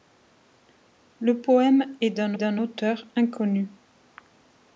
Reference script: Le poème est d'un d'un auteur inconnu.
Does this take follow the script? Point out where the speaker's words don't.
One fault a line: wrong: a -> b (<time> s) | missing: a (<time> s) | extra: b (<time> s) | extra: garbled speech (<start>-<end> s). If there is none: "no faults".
no faults